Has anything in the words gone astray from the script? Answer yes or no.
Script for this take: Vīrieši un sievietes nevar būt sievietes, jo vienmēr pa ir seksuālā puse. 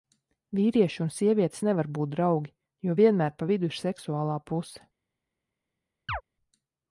yes